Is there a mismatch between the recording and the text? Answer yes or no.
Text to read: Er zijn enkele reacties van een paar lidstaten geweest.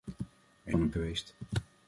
yes